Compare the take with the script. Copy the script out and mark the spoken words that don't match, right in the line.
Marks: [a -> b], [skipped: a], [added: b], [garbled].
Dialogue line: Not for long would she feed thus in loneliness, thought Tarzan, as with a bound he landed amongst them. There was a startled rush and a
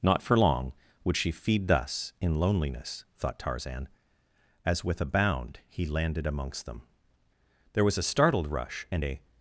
Not for long would she feed thus in loneliness, thought Tarzan, as with a bound he landed amongst them. There was a startled rush and a